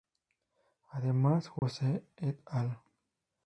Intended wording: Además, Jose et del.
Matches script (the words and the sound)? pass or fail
fail